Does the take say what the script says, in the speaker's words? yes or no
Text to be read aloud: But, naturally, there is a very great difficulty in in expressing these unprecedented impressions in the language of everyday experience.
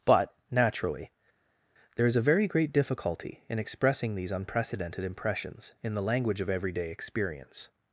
no